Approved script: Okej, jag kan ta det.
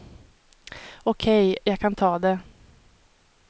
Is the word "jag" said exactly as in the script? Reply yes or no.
yes